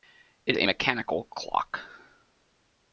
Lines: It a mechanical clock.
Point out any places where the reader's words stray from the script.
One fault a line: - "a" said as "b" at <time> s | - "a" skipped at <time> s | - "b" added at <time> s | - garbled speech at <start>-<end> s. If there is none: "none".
none